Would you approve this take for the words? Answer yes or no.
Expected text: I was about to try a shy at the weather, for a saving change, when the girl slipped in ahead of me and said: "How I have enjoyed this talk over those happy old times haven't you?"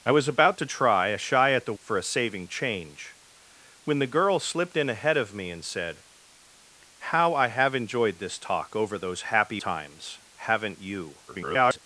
no